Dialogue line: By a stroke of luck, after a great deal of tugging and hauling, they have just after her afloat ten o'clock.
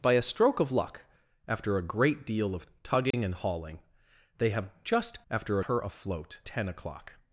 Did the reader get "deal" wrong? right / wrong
right